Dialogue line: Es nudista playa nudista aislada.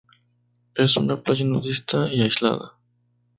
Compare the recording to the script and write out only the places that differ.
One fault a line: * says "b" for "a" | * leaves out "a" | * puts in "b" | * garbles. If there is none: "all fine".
* says "una" for "nudista"
* puts in "y"